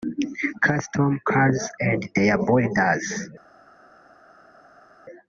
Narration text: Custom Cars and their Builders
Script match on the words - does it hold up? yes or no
yes